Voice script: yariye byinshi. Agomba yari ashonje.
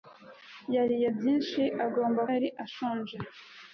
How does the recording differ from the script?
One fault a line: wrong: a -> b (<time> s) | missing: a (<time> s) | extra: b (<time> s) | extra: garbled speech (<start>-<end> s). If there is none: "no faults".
no faults